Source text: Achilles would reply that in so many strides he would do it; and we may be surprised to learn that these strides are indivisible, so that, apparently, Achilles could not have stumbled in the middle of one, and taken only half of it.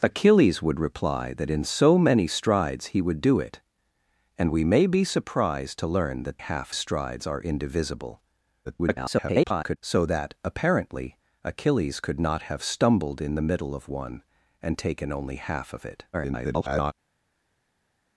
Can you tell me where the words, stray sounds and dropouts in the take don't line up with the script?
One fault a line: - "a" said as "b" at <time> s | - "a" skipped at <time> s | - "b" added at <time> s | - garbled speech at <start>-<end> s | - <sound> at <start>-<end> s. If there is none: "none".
- "these" said as "half" at 6.4 s
- garbled speech at 8.6-9.8 s
- garbled speech at 16.1-16.9 s